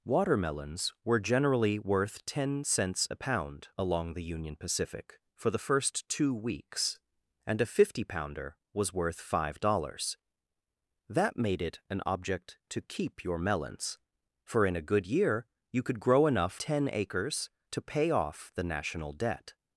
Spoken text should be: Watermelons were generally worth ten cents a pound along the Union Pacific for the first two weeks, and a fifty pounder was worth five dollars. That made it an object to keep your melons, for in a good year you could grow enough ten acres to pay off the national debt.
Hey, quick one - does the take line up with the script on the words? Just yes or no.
yes